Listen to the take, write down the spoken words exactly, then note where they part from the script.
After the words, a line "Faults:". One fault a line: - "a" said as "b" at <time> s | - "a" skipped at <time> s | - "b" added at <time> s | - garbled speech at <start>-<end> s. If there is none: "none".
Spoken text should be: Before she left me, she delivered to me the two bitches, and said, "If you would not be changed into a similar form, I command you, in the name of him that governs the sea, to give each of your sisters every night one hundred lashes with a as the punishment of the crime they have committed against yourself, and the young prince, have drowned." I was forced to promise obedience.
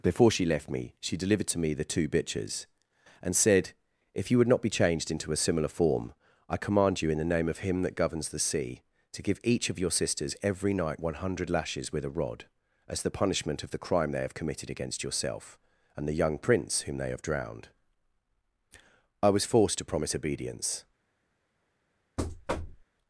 Before she left me, she delivered to me the two bitches, and said, "If you would not be changed into a similar form, I command you, in the name of him that governs the sea, to give each of your sisters every night one hundred lashes with a rod, as the punishment of the crime they have committed against yourself, and the young prince, whom they have drowned." I was forced to promise obedience.
Faults:
- "rod" added at 12.1 s
- "whom they" added at 16.8 s